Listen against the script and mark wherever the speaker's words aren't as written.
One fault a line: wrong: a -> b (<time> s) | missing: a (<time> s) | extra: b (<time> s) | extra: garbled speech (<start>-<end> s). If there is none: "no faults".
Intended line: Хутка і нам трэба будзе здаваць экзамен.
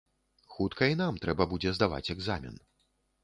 no faults